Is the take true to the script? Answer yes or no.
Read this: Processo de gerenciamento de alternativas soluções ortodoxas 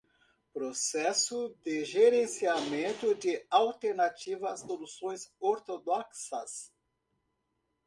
yes